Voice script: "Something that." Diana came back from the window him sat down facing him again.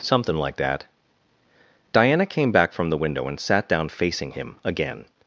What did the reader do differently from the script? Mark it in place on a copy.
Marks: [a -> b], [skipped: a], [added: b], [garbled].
"Something [added: like] that." Diana came back from the window [him -> and] sat down facing him again.